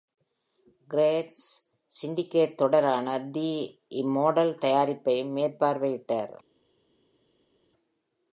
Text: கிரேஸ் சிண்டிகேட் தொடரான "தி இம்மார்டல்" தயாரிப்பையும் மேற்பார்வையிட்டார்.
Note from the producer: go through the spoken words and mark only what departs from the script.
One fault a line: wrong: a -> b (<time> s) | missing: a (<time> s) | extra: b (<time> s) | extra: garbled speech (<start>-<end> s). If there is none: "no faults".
no faults